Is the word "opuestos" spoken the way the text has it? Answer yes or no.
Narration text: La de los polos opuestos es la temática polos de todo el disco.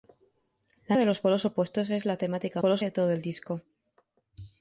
yes